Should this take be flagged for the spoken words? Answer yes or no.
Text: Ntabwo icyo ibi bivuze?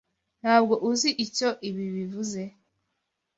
yes